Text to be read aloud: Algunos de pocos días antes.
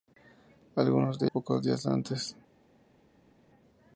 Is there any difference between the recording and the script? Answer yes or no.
no